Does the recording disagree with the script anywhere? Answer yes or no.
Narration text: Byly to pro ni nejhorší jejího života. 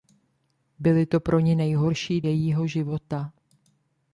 no